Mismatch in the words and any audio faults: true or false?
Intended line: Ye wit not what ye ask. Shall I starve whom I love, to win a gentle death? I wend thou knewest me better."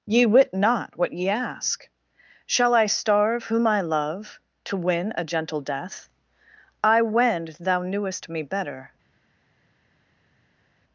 false